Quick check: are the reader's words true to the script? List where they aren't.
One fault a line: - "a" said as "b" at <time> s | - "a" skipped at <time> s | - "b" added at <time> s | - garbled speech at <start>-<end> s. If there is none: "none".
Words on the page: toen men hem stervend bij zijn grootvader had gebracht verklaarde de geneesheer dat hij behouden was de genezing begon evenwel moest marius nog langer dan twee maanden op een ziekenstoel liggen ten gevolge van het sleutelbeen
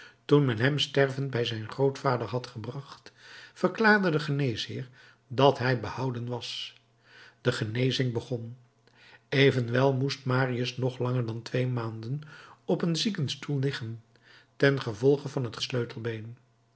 none